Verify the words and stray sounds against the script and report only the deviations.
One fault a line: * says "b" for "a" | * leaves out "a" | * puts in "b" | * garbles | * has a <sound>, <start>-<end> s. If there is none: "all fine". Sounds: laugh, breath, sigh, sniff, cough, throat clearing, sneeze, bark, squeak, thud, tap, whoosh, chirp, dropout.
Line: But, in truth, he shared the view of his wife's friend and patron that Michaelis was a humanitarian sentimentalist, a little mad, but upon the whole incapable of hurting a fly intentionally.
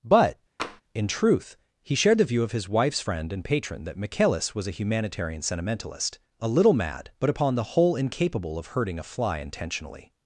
* has a tap, 0.6-0.8 s